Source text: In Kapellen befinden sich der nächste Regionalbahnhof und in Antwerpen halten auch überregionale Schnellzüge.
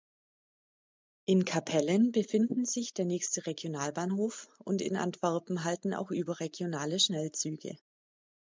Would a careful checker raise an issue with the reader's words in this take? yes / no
no